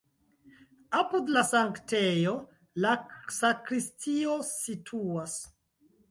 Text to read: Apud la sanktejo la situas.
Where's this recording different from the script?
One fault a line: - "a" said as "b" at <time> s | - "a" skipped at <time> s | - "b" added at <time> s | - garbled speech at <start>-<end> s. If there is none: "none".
- "sakristio" added at 3.4 s